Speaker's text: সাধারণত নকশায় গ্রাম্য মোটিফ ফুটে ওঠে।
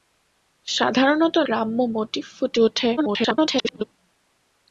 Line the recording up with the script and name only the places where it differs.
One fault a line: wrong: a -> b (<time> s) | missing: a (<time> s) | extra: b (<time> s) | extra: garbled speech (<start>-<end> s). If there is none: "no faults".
missing: নকশায় (1.4 s)
extra: garbled speech (3.0-3.8 s)